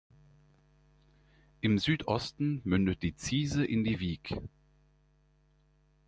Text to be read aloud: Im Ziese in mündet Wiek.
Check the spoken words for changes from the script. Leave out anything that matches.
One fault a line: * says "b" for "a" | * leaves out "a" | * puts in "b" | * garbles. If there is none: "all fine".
* puts in "Südosten mündet die"
* says "die" for "mündet"